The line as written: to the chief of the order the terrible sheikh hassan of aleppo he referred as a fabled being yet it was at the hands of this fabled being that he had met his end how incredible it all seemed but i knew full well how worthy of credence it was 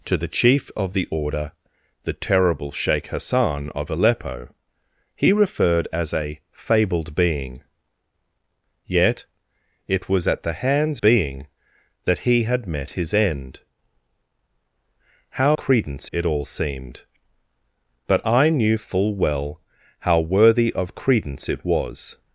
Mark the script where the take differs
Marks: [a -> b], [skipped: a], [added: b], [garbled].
to the chief of the order the terrible sheikh hassan of aleppo he referred as a fabled being yet it was at the hands [skipped: of this fabled] being that he had met his end how [incredible -> credence] it all seemed but i knew full well how worthy of credence it was